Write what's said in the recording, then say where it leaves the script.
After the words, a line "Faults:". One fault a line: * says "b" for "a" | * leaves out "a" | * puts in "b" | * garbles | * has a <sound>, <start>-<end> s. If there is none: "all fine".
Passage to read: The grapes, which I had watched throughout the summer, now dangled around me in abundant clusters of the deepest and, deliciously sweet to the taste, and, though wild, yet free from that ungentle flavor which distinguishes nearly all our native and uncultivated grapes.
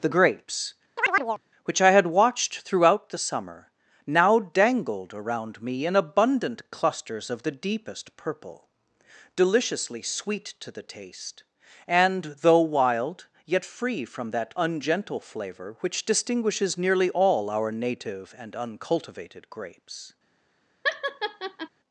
The grapes, which I had watched throughout the summer, now dangled around me in abundant clusters of the deepest purple, deliciously sweet to the taste, and, though wild, yet free from that ungentle flavor which distinguishes nearly all our native and uncultivated grapes.
Faults:
* has a chirp, 1.0-1.4 s
* says "purple" for "and"
* has a laugh, 20.8-21.7 s